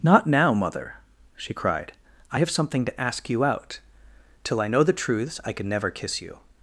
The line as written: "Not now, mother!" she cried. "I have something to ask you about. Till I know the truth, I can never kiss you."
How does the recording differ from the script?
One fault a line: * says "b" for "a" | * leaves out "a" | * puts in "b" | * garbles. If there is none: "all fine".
* says "out" for "about"
* says "truths" for "truth"